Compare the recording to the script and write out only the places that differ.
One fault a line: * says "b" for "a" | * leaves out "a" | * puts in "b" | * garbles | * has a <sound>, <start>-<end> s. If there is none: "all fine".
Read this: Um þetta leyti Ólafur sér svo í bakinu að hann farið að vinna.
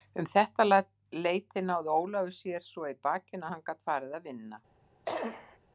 * puts in "náði"
* puts in "gat"
* has a cough, 5.1-5.6 s